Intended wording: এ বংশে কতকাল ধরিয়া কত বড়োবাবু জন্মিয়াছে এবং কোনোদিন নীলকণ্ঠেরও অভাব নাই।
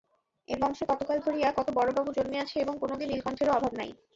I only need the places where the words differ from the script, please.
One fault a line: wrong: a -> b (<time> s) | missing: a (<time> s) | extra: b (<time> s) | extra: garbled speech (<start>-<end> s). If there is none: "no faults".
no faults